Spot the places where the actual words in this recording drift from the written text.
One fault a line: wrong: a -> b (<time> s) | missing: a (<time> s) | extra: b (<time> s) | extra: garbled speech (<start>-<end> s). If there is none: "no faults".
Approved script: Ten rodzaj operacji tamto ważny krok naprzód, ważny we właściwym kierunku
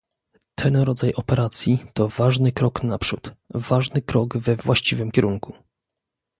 wrong: tamto -> to (1.9 s)
extra: krok (4.0 s)